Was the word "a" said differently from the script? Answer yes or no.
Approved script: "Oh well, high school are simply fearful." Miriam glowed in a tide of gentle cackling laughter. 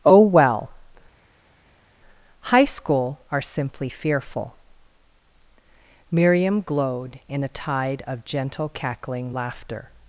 no